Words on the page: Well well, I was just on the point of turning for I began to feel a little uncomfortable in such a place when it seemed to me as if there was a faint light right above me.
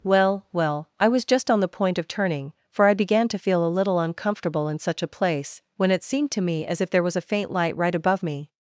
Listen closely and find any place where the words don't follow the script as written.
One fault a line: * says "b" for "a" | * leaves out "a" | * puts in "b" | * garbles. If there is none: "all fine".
all fine